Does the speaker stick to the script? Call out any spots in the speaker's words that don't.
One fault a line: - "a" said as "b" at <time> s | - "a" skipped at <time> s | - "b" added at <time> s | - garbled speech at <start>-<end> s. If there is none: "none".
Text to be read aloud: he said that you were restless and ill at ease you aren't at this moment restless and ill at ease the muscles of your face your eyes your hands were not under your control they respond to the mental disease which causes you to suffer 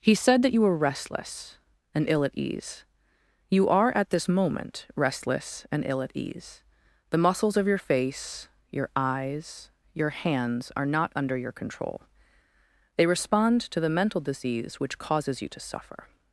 - "aren't" said as "are" at 3.7 s
- "were" said as "are" at 10.8 s